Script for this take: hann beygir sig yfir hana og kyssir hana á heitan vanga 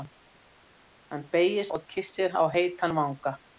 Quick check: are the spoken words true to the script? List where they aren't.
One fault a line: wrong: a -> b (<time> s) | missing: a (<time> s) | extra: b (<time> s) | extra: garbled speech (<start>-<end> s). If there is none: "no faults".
missing: sig yfir hana (1.7 s)
missing: hana (2.4 s)